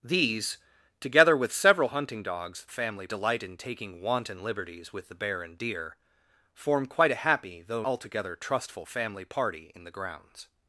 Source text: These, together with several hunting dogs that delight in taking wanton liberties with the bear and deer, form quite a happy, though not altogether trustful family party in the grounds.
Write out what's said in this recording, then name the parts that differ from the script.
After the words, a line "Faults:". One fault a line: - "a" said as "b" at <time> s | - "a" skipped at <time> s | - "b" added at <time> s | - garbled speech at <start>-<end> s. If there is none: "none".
These, together with several hunting dogs family delight in taking wanton liberties with the bear and deer, form quite a happy, though altogether trustful family party in the grounds.
Faults:
- "that" said as "family" at 2.7 s
- "not" skipped at 7.8 s